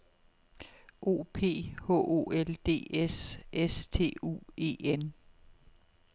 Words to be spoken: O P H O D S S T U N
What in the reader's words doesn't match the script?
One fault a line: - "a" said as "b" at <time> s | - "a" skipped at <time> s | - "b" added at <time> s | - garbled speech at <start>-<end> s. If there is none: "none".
- "L" added at 2.3 s
- "E" added at 4.6 s